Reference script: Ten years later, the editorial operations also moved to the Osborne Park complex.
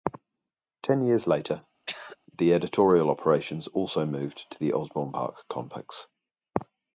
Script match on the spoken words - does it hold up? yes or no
yes